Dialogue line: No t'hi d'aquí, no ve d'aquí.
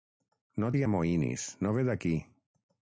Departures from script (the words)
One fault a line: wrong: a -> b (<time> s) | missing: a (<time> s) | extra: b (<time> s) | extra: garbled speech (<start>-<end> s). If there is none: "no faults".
wrong: d'aquí -> amoïnis (0.9 s)